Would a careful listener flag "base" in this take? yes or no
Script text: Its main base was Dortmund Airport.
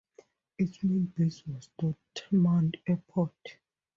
no